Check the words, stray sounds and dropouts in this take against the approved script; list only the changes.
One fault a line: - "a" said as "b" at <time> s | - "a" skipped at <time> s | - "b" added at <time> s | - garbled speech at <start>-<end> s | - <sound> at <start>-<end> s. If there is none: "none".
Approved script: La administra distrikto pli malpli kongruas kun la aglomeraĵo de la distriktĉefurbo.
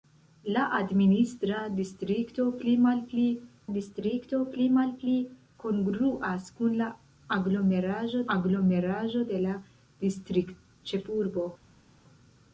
- "distrikto pli malpli" added at 3.8 s
- "aglomeraĵo" added at 8.4 s